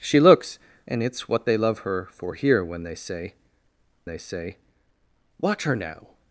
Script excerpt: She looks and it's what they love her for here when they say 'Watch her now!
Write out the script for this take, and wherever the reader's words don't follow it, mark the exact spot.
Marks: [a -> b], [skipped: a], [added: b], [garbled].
She looks and it's what they love her for here when they say [added: they say] 'Watch her now!